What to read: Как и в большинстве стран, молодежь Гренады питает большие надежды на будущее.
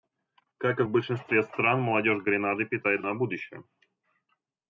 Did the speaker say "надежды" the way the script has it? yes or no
no